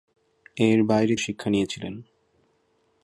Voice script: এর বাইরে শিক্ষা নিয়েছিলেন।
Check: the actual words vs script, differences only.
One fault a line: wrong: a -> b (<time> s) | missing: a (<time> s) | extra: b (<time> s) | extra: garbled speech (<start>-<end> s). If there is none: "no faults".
no faults